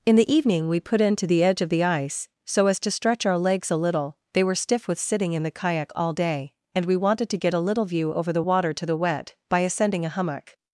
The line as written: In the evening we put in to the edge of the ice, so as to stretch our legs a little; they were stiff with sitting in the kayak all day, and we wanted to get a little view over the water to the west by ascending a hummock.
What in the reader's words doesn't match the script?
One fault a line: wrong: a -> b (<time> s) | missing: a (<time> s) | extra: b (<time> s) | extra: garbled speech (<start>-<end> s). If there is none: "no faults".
wrong: west -> wet (9.0 s)